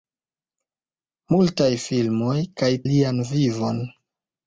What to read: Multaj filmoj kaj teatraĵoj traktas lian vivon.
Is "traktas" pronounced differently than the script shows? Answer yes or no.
yes